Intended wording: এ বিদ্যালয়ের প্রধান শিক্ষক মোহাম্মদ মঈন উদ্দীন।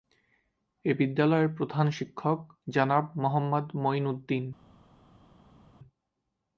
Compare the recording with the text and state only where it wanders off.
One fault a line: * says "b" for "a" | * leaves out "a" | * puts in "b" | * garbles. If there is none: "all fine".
* puts in "জনাব"